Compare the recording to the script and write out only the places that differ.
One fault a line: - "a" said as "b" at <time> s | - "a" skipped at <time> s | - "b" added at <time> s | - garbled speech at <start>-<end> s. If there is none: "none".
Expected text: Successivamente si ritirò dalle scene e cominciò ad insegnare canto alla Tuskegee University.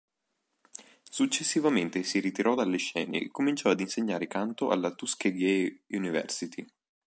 none